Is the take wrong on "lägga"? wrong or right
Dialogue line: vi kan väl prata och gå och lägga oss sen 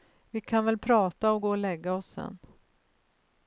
right